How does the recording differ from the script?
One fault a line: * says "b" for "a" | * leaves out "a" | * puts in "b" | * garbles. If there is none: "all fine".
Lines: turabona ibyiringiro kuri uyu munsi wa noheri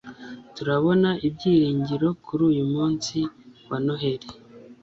all fine